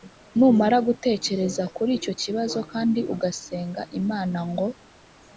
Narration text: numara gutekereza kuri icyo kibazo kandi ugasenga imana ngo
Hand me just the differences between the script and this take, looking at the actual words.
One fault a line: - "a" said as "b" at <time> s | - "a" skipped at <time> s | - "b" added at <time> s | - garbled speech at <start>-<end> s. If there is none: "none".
none